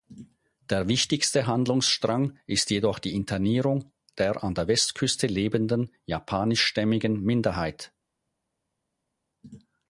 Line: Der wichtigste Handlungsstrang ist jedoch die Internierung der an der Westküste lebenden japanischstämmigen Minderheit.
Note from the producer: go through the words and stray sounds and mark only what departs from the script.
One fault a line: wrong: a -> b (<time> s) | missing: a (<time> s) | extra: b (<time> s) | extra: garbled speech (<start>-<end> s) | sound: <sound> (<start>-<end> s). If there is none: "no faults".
no faults